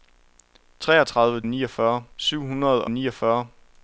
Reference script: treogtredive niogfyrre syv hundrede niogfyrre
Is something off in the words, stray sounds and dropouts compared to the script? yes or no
no